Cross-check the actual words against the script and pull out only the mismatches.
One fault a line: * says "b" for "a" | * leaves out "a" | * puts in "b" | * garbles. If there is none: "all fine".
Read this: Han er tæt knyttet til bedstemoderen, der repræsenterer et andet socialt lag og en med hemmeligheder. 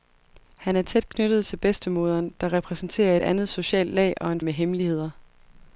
all fine